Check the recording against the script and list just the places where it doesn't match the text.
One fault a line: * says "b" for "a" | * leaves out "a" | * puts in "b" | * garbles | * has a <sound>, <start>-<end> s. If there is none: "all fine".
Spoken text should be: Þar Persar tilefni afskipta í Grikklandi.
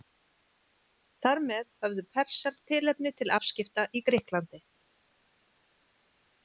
* puts in "með höfðu"
* puts in "til"